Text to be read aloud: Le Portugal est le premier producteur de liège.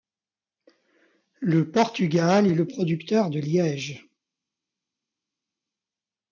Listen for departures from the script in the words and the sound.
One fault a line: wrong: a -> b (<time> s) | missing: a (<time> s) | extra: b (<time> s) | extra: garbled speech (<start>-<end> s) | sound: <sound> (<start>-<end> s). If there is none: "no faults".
missing: premier (2.7 s)